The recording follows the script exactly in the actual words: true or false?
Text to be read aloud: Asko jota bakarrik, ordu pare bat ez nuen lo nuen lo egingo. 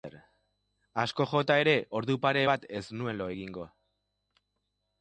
false